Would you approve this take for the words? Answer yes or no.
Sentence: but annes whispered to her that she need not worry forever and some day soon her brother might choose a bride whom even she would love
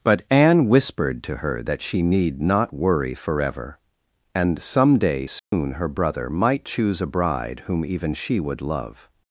no